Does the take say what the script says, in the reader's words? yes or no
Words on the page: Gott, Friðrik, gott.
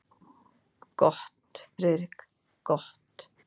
yes